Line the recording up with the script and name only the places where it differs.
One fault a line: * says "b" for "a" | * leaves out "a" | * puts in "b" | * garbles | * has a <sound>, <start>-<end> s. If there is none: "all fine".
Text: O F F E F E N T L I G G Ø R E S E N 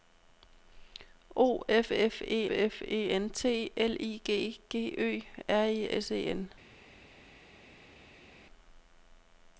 all fine